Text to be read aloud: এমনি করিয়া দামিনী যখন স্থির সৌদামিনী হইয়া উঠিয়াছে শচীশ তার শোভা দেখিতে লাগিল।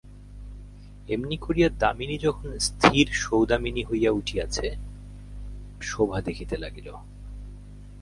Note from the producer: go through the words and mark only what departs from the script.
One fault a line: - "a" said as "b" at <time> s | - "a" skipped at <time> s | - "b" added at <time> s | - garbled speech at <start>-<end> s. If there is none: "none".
- "শচীশ তার" skipped at 4.7 s